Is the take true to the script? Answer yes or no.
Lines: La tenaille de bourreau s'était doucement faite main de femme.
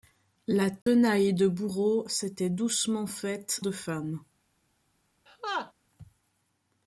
no